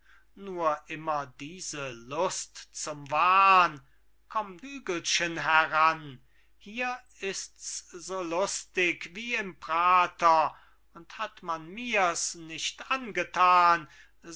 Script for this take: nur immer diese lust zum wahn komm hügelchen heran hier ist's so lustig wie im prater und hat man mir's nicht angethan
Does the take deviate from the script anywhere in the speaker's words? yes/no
no